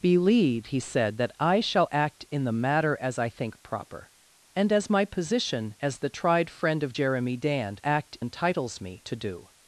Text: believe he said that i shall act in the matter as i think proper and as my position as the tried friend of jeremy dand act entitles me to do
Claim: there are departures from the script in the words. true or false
false